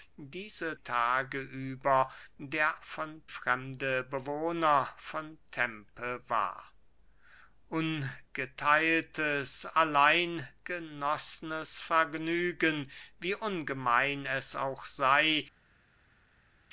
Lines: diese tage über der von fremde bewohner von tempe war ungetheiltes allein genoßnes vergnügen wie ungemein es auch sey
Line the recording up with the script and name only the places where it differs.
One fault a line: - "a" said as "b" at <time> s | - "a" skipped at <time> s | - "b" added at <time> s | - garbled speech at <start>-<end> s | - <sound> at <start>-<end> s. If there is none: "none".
none